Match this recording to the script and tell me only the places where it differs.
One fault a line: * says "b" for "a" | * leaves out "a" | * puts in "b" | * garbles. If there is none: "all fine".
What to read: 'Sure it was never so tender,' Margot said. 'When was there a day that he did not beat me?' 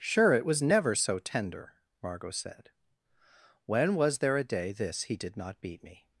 * says "this" for "that"